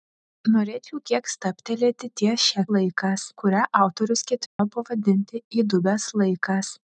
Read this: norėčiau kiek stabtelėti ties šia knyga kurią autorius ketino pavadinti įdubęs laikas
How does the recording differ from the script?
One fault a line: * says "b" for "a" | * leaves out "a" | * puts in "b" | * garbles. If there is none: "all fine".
* says "laikas" for "knyga"